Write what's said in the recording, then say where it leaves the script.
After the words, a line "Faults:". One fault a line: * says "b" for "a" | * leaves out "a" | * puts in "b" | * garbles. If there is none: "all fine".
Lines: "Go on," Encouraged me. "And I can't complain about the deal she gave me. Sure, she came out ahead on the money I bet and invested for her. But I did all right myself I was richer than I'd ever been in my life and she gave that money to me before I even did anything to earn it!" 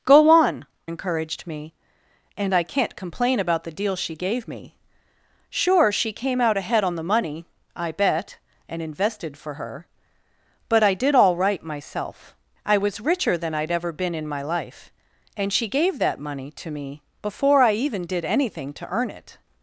"Go on," Encouraged me. "And I can't complain about the deal she gave me. Sure, she came out ahead on the money I bet and invested for her. But I did all right myself I was richer than I'd ever been in my life and she gave that money to me before I even did anything to earn it!"
Faults:
all fine